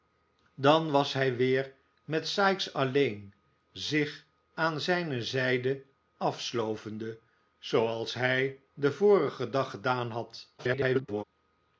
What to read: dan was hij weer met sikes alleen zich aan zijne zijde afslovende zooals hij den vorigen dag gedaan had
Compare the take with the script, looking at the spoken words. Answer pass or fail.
fail